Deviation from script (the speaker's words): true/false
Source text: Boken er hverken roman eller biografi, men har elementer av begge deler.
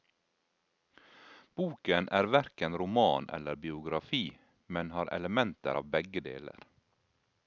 false